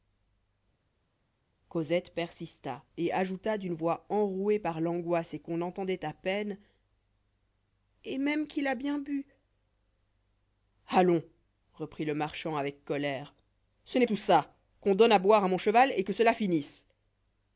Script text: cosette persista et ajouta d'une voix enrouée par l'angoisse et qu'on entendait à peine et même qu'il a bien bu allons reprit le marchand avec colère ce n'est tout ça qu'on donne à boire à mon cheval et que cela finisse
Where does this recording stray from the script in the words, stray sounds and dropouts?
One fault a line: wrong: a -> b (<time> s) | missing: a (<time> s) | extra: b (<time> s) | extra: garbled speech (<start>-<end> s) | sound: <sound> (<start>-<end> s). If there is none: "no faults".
no faults